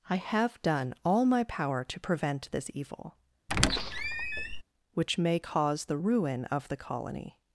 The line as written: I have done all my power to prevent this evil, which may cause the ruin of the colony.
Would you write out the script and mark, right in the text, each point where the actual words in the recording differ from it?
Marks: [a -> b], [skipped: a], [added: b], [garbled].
I have done all my power to prevent this evil, which may cause the ruin of the colony.